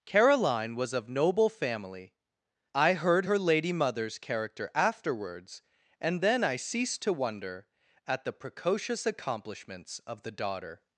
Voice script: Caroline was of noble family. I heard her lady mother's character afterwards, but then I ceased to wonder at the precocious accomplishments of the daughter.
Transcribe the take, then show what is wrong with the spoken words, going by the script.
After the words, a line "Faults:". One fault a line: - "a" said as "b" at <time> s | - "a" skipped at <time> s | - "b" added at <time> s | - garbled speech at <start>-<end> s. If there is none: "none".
Caroline was of noble family. I heard her lady mother's character afterwards, and then I ceased to wonder at the precocious accomplishments of the daughter.
Faults:
- "but" said as "and" at 6.0 s